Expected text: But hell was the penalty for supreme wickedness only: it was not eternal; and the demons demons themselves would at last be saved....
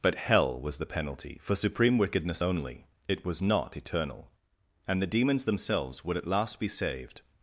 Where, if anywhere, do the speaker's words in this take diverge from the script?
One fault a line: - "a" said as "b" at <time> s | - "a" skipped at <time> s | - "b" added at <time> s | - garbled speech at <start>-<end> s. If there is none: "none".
- "demons" skipped at 5.4 s